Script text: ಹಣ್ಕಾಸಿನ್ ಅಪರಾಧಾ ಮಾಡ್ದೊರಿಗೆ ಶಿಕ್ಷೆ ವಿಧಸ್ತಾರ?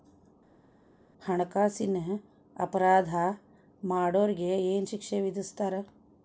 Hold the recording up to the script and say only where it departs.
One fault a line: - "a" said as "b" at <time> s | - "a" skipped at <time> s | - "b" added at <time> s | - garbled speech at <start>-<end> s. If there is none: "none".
- "ಏನ್" added at 4.7 s